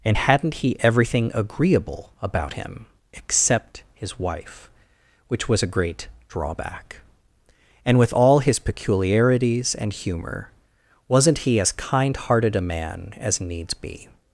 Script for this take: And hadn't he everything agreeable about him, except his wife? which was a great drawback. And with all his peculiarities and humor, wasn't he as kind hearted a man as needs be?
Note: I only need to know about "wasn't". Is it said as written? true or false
true